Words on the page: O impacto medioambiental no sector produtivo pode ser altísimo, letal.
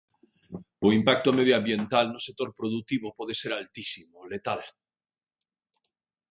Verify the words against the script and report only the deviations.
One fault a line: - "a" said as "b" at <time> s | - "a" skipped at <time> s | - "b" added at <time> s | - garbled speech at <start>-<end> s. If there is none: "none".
none